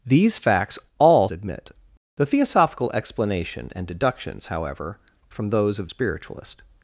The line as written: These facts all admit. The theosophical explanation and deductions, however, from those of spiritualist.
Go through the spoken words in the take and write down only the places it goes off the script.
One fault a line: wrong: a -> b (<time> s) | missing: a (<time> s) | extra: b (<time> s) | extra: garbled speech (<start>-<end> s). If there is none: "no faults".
no faults